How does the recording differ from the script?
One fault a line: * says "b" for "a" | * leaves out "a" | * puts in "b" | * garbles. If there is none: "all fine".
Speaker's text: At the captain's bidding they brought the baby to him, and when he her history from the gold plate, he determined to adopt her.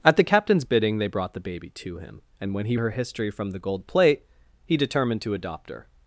all fine